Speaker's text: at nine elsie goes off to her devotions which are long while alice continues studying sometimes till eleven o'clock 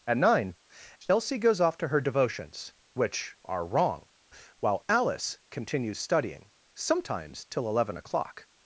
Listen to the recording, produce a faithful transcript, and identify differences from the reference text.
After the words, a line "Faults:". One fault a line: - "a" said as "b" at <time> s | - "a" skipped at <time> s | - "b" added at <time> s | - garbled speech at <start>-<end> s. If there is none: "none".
at nine elsie goes off to her devotions which are wrong while alice continues studying sometimes till eleven o'clock
Faults:
- "long" said as "wrong" at 3.6 s